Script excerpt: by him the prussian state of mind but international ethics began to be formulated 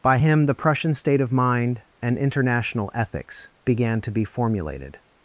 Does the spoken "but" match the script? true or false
false